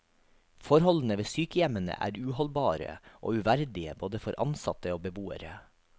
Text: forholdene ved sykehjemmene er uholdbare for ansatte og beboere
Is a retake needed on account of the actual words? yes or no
yes